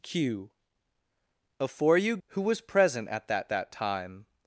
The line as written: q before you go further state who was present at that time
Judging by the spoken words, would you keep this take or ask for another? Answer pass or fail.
fail